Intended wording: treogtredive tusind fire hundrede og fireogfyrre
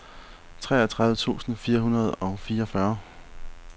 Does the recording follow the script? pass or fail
pass